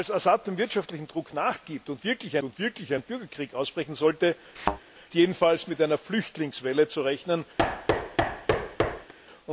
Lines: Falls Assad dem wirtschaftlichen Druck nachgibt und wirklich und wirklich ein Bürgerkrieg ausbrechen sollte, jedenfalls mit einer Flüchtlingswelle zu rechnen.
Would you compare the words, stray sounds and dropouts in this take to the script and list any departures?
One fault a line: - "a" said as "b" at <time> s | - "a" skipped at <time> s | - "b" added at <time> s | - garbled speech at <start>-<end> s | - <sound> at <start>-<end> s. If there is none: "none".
- thud at 4.6-4.8 s
- thud at 7.6-9.1 s